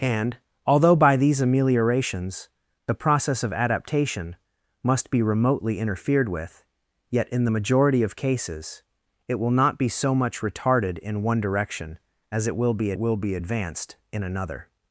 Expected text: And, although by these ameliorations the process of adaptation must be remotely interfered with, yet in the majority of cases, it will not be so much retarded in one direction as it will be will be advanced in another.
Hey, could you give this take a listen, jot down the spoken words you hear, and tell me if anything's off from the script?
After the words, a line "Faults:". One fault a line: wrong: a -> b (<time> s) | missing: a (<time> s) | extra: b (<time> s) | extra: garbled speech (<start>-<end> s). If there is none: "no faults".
And, although by these ameliorations the process of adaptation must be remotely interfered with, yet in the majority of cases, it will not be so much retarded in one direction as it will be will be advanced in another.
Faults:
no faults